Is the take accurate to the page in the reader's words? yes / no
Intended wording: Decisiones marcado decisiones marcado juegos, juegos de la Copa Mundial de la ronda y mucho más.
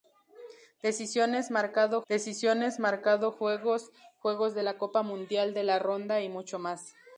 yes